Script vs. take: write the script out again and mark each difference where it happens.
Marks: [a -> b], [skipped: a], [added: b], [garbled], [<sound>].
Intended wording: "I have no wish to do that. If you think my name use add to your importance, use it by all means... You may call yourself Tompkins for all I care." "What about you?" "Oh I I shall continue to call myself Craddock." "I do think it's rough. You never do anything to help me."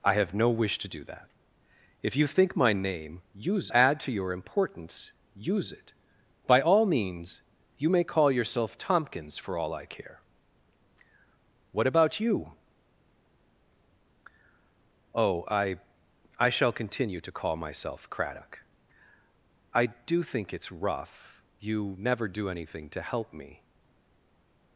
"I have no wish to do that. If you think my name use add to your importance, use it by all means... You may call yourself Tompkins for all I care." "What about you?" "Oh I I shall continue to call myself Craddock." "I do think it's rough. You never do anything to help me."